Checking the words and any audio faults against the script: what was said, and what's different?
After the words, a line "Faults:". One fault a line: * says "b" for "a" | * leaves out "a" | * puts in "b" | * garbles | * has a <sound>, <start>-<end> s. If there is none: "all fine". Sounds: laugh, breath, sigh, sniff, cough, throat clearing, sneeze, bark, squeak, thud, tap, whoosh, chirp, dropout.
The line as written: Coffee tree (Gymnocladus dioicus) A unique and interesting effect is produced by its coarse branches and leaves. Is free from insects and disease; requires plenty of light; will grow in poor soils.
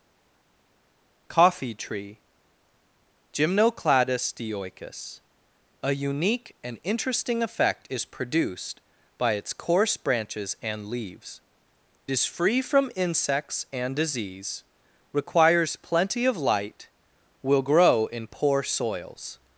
Coffee tree (Gymnocladus dioicus) A unique and interesting effect is produced by its coarse branches and leaves. Is free from insects and disease; requires plenty of light; will grow in poor soils.
Faults:
all fine